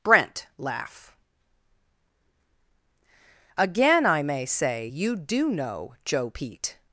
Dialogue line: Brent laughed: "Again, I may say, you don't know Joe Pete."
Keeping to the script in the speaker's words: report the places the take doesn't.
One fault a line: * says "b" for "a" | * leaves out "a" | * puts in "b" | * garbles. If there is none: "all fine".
* says "laugh" for "laughed"
* says "do" for "don't"